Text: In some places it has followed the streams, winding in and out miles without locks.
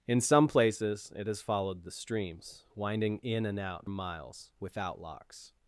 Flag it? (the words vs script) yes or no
no